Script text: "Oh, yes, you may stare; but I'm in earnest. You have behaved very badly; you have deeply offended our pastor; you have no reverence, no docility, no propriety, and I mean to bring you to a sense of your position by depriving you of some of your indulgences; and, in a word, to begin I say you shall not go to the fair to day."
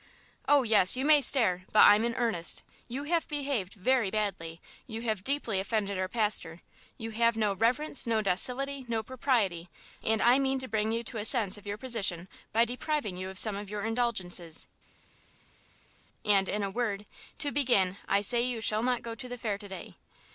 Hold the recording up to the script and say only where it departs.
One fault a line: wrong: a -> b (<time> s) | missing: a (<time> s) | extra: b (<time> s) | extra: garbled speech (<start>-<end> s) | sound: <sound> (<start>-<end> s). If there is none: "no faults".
no faults